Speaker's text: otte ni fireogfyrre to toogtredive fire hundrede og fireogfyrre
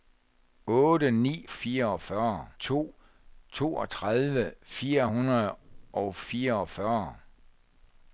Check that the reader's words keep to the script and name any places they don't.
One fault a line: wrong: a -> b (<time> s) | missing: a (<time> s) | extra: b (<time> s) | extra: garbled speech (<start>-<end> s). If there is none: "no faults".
no faults